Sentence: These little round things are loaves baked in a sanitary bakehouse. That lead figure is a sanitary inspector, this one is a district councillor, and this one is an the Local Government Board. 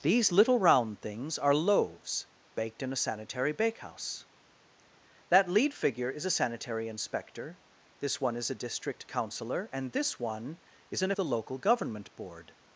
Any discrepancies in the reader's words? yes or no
no